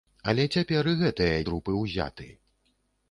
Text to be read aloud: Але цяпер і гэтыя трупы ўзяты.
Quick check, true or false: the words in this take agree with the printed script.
true